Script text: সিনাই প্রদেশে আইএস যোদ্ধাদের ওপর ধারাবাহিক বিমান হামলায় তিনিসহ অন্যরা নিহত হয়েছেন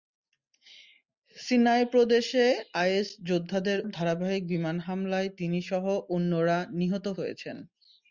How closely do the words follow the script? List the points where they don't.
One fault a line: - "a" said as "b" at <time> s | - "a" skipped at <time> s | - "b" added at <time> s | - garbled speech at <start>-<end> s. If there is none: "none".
- "ওপর" skipped at 3.8 s